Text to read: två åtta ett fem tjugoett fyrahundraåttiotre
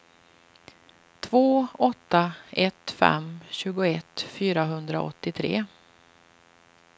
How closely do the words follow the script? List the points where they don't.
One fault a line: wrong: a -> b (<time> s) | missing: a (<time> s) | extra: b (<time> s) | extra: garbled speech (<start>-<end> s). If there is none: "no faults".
no faults